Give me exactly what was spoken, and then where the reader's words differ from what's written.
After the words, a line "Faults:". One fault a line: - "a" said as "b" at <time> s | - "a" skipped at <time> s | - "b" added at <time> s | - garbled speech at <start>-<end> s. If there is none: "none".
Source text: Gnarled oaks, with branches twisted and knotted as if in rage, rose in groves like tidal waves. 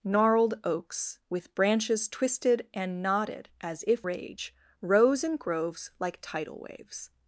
Gnarled oaks, with branches twisted and knotted as if rage, rose in groves like tidal waves.
Faults:
- "in" skipped at 4.1 s